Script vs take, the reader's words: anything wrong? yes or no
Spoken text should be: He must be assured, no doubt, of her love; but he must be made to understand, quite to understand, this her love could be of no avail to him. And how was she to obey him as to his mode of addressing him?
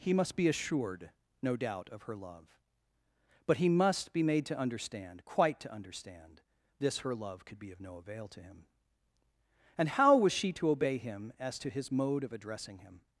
no